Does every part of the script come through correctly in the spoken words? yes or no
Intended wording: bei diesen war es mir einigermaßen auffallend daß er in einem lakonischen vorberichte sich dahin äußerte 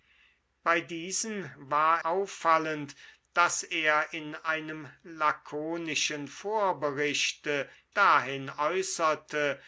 no